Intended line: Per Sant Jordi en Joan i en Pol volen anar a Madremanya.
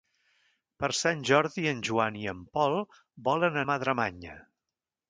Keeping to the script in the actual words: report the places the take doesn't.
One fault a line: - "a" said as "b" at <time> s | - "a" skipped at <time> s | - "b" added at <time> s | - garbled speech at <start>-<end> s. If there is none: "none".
- "anar" skipped at 3.6 s